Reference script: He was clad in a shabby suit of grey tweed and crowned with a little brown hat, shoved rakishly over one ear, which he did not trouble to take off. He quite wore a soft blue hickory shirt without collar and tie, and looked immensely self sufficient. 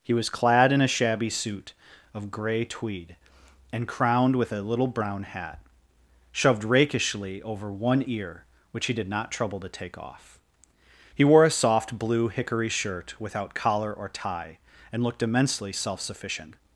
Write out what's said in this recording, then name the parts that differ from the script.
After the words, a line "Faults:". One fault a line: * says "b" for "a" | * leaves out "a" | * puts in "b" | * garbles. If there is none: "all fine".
He was clad in a shabby suit of grey tweed and crowned with a little brown hat, shoved rakishly over one ear, which he did not trouble to take off. He wore a soft blue hickory shirt without collar or tie, and looked immensely self sufficient.
Faults:
* leaves out "quite"
* says "or" for "and"